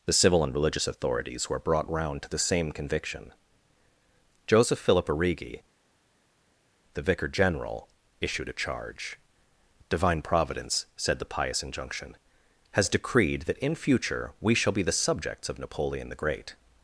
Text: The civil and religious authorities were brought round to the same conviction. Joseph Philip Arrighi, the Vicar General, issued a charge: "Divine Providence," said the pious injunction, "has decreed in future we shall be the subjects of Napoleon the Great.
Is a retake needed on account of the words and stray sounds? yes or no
yes